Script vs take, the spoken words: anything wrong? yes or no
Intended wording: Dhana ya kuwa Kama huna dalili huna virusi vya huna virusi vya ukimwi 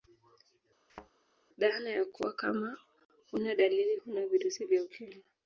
yes